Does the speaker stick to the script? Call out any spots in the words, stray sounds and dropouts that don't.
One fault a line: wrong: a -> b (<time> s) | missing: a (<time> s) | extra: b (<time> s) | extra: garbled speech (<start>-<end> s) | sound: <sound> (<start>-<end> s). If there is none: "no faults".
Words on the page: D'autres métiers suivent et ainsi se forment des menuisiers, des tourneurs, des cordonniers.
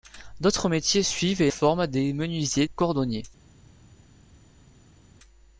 missing: ainsi se (1.5 s)
missing: des tourneurs des (2.7 s)